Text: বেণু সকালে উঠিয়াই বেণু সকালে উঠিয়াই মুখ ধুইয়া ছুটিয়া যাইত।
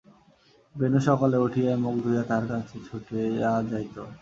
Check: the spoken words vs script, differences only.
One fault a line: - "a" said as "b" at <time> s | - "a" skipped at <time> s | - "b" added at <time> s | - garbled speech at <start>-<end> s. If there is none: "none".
- "বেণু সকালে উঠিয়াই মুখ ধুইয়া" said as "মুখ ধুইয়া তাহার কাছে" at 1.8 s